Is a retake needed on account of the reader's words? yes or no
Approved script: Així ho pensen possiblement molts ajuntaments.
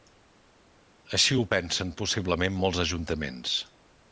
no